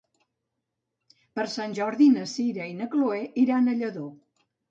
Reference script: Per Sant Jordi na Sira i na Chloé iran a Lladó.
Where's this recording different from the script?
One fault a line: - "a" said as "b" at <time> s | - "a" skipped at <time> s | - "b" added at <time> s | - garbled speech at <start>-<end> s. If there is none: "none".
none